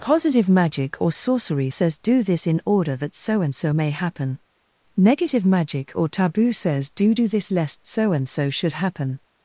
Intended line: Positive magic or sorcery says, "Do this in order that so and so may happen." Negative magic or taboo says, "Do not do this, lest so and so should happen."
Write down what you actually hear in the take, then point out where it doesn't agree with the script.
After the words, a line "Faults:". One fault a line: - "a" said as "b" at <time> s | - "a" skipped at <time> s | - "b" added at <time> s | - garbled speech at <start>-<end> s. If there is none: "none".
Positive magic or sorcery says, "Do this in order that so and so may happen." Negative magic or taboo says, "Do do this, lest so and so should happen."
Faults:
- "not" skipped at 7.1 s